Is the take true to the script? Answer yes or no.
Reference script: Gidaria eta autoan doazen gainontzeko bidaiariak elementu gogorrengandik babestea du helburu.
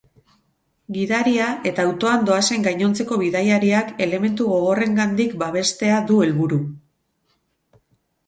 yes